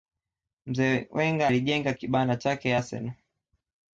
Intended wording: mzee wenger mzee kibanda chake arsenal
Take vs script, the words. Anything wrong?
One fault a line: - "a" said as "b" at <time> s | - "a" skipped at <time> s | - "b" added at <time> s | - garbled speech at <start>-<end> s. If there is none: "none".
- "mzee" said as "alijenga" at 1.5 s